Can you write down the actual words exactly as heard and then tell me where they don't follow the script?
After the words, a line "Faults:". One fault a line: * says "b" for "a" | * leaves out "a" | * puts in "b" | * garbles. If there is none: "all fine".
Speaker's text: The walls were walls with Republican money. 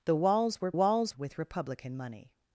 The walls were walls with Republican money.
Faults:
all fine